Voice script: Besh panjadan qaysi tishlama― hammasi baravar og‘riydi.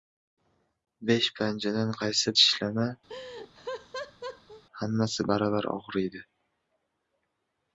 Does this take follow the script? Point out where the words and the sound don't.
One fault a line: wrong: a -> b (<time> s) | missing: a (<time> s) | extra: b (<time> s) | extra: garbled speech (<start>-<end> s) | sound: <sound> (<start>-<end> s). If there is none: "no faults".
sound: laugh (3.1-4.6 s)